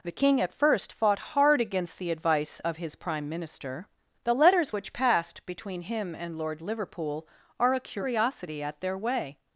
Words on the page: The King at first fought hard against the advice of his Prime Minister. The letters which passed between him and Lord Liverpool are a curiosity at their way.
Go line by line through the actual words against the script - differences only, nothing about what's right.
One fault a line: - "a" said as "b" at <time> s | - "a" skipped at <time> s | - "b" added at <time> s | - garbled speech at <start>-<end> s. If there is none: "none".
none